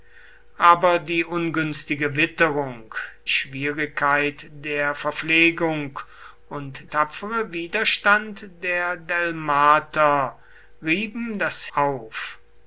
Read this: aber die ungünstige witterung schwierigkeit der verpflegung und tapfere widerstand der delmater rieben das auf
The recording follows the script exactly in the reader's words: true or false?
true